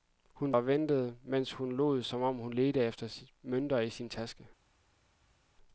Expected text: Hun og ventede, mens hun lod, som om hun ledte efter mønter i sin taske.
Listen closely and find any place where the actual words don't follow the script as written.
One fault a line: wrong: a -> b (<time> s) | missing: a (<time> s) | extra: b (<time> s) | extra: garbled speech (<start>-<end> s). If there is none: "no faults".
no faults